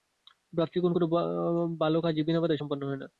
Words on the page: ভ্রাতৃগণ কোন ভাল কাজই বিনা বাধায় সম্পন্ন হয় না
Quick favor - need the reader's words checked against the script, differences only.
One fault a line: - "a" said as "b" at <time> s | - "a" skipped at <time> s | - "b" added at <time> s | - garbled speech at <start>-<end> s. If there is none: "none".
none